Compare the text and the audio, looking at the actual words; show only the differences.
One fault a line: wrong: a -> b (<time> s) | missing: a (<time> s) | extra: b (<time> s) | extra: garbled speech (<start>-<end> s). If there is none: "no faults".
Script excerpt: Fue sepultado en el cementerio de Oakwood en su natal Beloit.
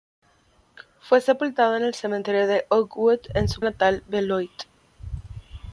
no faults